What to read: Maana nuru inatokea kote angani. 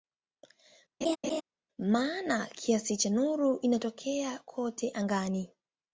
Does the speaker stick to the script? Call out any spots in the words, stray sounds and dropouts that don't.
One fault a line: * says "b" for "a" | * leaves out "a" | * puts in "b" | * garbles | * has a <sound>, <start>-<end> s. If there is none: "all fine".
* has a laugh, 1.0-1.4 s
* puts in "kiasi cha"